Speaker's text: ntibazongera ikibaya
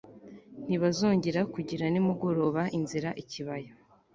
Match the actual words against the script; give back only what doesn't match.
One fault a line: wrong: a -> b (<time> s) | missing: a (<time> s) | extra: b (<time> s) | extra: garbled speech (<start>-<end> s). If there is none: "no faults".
extra: kugira nimugoroba inzira (1.5 s)